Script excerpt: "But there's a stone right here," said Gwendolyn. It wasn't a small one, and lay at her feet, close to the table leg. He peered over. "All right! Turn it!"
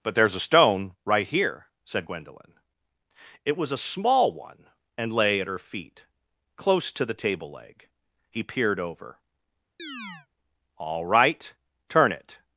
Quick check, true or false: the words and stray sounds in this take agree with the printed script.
false